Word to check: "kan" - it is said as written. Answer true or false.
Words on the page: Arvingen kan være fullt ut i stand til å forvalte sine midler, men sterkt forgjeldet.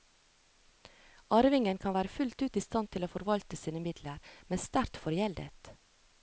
true